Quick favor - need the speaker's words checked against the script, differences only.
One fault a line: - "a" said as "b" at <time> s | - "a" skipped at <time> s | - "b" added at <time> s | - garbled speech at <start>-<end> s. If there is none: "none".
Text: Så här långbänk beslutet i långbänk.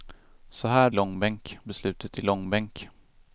none